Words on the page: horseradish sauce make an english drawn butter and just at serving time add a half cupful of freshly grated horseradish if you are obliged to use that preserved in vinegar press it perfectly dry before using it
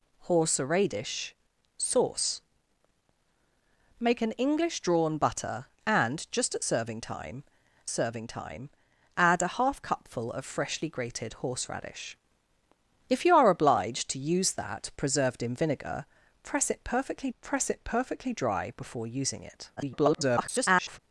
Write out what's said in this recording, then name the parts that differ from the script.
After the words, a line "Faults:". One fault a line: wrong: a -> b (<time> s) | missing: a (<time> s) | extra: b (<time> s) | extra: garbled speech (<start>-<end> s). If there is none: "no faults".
horseradish sauce make an english drawn butter and just at serving time serving time add a half cupful of freshly grated horseradish if you are obliged to use that preserved in vinegar press it perfectly press it perfectly dry before using it [garbled]
Faults:
extra: serving time (7.9 s)
extra: press it perfectly (17.4 s)
extra: garbled speech (19.8-21.0 s)